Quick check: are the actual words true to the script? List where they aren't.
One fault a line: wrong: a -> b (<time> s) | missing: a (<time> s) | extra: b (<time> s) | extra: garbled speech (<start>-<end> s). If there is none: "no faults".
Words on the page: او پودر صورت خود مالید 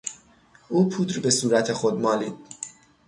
extra: به (1.2 s)